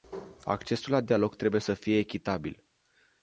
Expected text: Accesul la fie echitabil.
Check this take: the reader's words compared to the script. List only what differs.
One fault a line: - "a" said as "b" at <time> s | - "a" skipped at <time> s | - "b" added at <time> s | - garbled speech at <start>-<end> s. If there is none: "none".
- "dialog trebuie să" added at 1.0 s